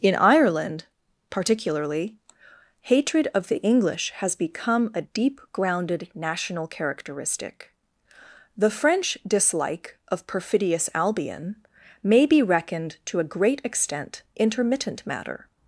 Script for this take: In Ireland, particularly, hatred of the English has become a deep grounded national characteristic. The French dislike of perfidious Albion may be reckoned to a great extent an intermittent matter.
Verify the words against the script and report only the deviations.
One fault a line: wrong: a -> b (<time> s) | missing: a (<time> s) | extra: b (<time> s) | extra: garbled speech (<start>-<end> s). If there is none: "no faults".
missing: an (14.2 s)